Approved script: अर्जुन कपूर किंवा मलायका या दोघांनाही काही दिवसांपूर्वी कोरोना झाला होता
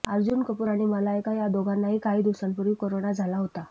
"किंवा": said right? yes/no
no